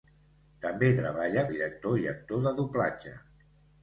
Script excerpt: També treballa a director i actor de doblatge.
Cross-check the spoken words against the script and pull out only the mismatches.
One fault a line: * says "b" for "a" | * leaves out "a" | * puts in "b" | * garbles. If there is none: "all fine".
all fine